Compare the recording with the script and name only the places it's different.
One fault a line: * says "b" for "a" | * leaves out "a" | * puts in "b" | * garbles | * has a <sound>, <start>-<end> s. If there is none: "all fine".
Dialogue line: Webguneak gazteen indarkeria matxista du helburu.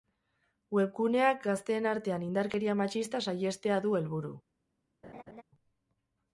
* puts in "artean"
* puts in "saihestea"
* has a laugh, 5.0-5.4 s